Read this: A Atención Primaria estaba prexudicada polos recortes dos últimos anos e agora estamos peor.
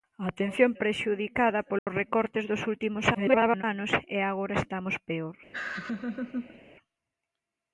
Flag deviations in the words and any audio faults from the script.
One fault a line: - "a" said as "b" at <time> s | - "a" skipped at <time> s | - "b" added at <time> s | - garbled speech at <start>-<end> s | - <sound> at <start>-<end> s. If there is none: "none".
- "Primaria estaba" skipped at 0.7 s
- dropout at 1.8-1.9 s
- garbled speech at 3.1-3.6 s
- laugh at 5.5-6.6 s